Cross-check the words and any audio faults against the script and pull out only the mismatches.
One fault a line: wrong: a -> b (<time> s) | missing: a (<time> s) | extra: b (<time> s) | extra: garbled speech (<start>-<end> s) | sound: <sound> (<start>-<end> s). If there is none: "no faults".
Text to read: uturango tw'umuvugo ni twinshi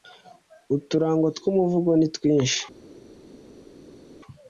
no faults